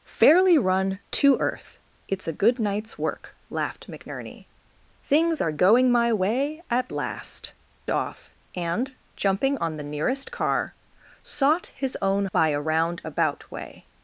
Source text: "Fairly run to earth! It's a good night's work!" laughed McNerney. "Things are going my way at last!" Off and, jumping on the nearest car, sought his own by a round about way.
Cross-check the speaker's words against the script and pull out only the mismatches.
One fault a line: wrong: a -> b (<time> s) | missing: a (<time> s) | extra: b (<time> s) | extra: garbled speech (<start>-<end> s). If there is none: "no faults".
no faults